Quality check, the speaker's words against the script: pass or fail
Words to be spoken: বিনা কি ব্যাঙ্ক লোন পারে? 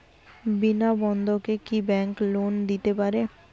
fail